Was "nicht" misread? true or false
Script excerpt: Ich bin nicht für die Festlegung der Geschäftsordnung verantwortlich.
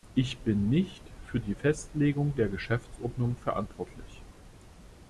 false